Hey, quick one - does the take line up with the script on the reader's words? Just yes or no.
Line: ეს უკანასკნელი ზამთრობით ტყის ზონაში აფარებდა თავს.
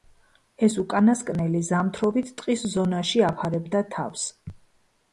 yes